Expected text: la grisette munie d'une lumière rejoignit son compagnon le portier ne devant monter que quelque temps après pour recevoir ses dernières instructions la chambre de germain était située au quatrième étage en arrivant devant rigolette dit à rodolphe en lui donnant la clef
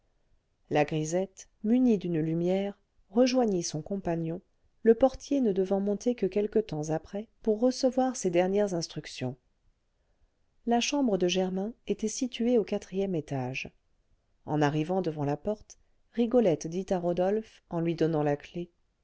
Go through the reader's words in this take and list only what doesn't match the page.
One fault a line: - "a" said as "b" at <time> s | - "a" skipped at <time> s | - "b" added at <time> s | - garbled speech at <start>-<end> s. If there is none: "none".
- "la porte" added at 15.2 s